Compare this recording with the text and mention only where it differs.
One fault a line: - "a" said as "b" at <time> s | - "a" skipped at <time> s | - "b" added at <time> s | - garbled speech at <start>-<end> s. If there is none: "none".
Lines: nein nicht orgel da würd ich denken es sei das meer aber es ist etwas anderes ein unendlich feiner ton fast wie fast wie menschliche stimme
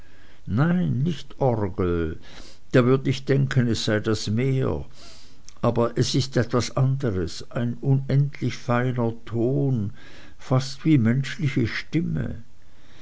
- "fast wie" skipped at 11.0 s